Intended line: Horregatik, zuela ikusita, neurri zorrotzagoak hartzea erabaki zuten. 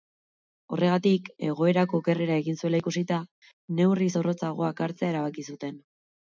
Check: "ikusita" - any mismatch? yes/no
no